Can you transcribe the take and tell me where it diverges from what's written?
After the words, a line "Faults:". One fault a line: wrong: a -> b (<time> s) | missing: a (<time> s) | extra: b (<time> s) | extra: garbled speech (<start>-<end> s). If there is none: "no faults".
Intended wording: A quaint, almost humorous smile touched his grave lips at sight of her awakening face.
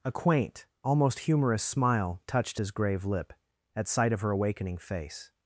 A quaint, almost humorous smile touched his grave lip at sight of her awakening face.
Faults:
wrong: lips -> lip (3.0 s)